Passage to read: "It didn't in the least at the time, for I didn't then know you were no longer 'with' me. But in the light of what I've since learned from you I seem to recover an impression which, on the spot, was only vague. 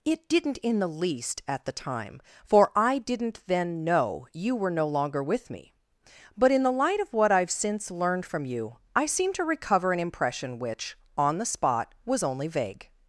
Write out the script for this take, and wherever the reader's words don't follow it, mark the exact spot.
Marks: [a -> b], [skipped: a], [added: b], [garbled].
"It didn't in the least at the time, for I didn't then know you were no longer 'with' me. But in the light of what I've since learned from you I seem to recover an impression which, on the spot, was only vague.